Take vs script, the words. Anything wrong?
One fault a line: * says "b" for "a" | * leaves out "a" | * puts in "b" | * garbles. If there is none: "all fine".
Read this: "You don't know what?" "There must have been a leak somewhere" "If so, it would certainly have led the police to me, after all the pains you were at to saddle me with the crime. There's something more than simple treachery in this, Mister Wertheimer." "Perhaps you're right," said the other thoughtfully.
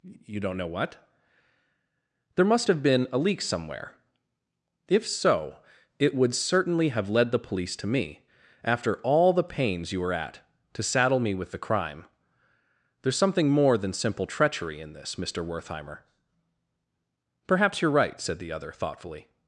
all fine